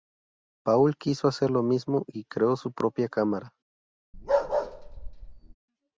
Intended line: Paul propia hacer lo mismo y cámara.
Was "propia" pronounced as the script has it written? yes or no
no